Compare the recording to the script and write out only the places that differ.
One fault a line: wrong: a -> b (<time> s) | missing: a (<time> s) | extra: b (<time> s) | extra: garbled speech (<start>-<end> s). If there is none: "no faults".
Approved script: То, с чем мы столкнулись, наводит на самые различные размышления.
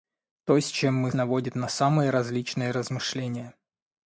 missing: столкнулись (1.1 s)